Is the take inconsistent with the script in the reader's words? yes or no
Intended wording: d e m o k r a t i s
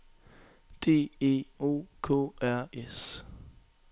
yes